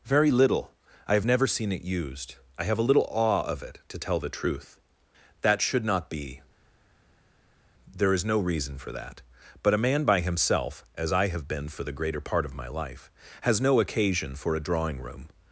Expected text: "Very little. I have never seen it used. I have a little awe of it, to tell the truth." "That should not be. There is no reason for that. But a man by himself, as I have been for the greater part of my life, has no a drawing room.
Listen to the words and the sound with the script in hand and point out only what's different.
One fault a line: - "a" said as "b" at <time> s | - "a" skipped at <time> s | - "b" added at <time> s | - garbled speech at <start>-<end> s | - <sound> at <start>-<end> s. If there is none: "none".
- "occasion for" added at 13.8 s